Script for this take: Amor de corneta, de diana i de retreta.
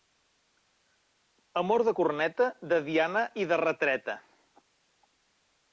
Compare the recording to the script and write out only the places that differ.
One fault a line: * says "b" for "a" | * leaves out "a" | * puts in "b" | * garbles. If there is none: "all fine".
all fine